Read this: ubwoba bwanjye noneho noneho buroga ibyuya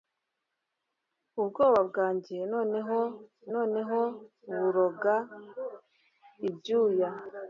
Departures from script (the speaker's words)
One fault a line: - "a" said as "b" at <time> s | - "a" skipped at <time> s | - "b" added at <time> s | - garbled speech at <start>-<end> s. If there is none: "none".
none